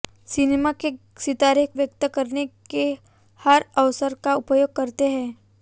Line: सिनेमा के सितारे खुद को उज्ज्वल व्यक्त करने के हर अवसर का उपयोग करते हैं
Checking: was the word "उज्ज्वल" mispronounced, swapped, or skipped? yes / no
yes